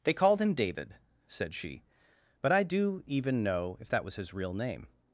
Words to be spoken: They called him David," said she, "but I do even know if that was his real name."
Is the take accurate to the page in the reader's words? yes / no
yes